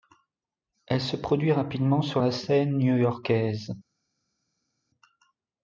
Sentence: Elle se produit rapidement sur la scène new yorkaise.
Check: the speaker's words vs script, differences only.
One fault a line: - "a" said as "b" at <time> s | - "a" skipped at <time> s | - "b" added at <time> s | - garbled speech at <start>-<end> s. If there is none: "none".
none